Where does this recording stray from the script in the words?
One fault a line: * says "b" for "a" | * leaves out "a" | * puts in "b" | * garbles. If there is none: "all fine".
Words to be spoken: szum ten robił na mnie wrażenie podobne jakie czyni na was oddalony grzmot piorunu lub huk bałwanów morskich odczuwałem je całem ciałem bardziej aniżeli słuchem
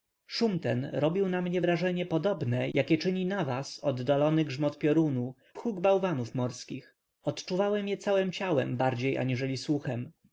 * leaves out "lub"